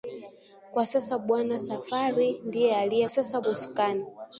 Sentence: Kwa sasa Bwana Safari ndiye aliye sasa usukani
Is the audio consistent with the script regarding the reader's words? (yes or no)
yes